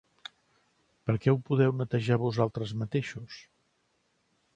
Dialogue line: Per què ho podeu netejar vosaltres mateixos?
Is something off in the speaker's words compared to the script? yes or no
no